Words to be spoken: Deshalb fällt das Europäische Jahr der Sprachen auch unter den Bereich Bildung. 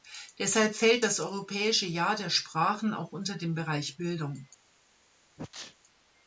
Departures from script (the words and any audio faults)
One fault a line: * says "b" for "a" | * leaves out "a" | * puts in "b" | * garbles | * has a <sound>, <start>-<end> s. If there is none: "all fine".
* has a sneeze, 5.4-5.8 s